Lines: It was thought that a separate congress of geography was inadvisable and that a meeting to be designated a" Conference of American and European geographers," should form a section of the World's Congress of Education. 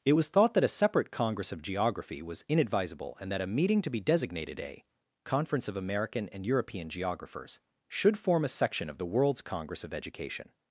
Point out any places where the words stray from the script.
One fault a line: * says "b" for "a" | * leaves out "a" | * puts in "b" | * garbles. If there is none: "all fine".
all fine